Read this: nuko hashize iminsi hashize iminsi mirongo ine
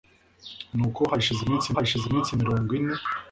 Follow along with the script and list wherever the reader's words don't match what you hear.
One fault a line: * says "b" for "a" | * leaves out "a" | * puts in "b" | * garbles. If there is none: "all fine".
all fine